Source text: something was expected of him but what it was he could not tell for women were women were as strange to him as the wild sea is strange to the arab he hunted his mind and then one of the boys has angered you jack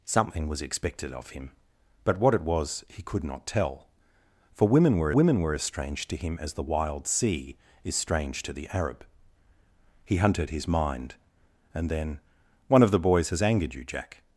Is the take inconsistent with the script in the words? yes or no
no